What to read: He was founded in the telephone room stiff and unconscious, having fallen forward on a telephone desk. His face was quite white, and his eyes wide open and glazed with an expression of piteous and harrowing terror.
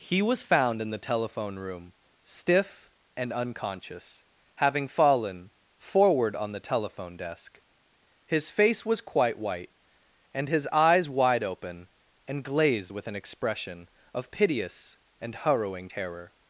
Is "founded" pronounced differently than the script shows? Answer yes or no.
yes